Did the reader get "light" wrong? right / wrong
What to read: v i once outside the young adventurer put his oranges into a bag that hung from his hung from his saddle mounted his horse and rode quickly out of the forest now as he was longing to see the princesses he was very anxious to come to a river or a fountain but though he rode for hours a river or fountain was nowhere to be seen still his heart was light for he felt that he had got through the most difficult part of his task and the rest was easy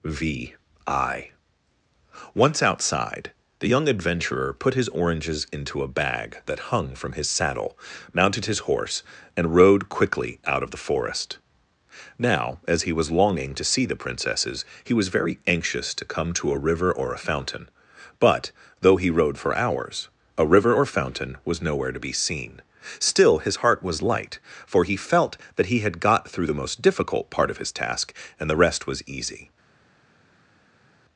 right